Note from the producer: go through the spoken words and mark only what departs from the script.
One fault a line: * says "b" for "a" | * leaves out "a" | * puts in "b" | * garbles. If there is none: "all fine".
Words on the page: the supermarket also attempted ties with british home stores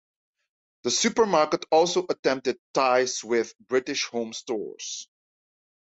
all fine